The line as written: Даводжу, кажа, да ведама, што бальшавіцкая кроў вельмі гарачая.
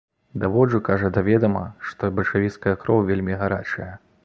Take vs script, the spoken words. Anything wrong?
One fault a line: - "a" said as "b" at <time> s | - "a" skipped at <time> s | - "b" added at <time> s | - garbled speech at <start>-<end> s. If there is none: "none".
none